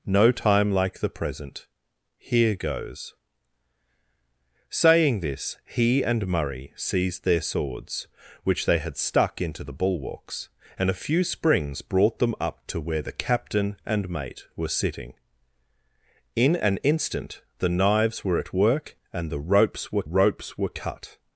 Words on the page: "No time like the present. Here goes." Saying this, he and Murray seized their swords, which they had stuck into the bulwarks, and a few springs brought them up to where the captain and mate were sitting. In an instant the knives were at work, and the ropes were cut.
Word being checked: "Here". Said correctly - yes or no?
yes